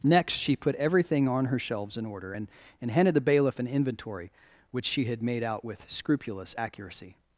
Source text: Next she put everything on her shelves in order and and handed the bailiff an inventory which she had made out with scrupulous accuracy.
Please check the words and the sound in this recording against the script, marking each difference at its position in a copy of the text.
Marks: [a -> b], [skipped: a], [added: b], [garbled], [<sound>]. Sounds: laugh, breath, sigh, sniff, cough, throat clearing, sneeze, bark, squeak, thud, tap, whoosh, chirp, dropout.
Next she put everything on her shelves in order and and handed the bailiff an inventory which she had made out with scrupulous accuracy.